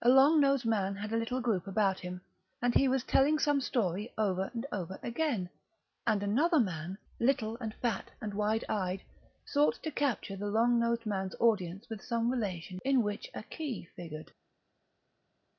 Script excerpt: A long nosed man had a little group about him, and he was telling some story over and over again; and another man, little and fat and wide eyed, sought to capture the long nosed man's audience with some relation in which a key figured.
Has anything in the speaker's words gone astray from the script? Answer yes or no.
no